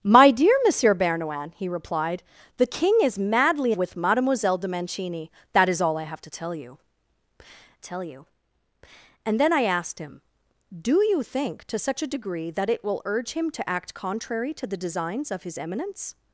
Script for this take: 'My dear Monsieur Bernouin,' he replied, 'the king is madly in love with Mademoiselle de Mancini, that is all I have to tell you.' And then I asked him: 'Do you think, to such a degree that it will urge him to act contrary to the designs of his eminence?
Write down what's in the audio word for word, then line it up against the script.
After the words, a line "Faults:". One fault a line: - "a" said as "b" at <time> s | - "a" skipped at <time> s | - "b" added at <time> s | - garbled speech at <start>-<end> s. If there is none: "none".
'My dear Monsieur Bernouin,' he replied, 'the king is madly with Mademoiselle de Mancini, that is all I have to tell you tell you.' And then I asked him: 'Do you think, to such a degree that it will urge him to act contrary to the designs of his eminence?
Faults:
- "in love" skipped at 3.7 s
- "tell you" added at 7.8 s